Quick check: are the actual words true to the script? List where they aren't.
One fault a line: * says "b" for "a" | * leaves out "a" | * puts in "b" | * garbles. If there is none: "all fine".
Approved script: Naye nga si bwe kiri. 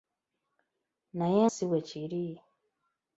* leaves out "nga"